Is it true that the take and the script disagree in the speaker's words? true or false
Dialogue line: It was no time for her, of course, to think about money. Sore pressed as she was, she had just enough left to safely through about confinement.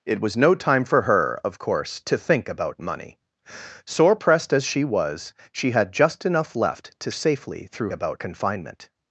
false